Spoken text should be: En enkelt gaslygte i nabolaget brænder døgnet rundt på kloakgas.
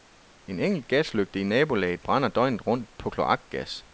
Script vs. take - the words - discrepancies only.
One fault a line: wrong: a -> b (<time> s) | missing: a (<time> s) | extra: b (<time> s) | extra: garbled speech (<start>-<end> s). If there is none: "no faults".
no faults